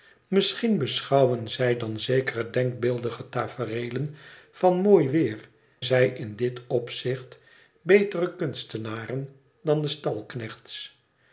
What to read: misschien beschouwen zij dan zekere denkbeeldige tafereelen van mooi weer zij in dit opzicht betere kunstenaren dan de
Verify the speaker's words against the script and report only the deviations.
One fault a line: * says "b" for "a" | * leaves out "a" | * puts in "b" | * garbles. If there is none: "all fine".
all fine